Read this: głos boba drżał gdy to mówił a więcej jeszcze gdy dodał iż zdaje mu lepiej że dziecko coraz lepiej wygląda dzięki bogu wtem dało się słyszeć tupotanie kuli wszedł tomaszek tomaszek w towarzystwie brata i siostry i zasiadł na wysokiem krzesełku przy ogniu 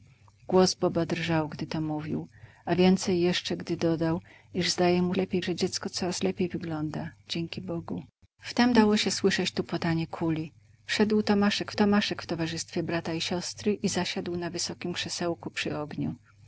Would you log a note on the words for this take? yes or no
no